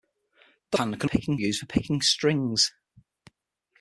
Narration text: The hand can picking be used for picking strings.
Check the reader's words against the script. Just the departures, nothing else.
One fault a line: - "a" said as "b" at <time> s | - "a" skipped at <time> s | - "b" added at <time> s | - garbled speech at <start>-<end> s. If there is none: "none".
none